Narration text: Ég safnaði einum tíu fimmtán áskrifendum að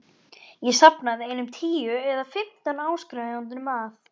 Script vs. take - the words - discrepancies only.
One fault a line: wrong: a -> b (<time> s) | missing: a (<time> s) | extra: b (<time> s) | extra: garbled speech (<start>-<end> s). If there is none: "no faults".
extra: eða (2.1 s)